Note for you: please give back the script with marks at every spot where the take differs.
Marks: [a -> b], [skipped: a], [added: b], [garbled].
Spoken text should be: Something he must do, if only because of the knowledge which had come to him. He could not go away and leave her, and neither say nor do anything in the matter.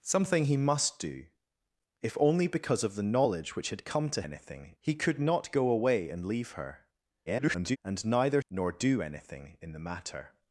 Something he must do, if only because of the knowledge which had come to [him. -> anything] He could not go away and leave her, [garbled] and neither [skipped: say] nor do anything in the matter.